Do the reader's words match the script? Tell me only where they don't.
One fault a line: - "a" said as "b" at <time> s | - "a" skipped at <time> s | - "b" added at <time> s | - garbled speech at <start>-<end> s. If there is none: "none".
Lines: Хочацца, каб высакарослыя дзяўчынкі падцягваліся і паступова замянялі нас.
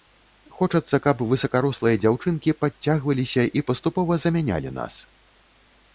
none